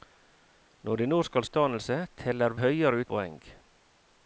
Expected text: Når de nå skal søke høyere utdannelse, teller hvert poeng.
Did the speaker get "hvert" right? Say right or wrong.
wrong